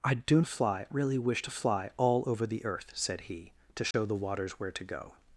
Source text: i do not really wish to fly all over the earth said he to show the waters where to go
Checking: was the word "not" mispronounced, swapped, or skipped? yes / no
yes